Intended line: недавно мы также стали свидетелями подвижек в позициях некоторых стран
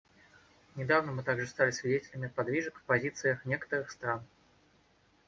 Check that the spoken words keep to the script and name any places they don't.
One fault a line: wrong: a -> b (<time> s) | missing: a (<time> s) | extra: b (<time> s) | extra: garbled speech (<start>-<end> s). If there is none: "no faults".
no faults